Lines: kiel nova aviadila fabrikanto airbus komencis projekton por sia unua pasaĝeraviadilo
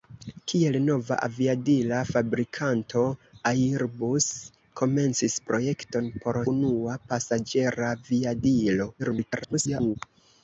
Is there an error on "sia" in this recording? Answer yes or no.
yes